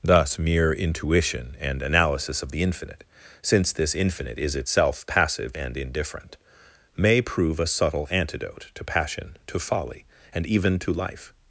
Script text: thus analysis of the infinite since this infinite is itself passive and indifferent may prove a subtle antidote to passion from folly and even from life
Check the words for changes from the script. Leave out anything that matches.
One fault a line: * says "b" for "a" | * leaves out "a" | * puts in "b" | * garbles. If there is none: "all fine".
* puts in "mere intuition and"
* says "to" for "from"
* says "to" for "from"